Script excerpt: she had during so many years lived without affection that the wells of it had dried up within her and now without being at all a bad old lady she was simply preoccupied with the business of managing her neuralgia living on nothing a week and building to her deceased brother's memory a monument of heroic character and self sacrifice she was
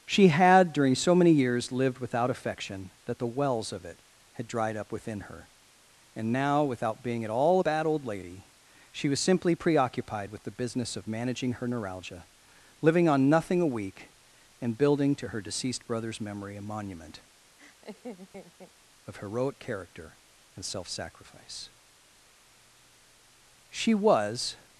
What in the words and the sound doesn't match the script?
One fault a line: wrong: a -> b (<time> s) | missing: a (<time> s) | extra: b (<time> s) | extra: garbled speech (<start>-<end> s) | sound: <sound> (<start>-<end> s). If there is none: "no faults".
sound: laugh (17.6-18.7 s)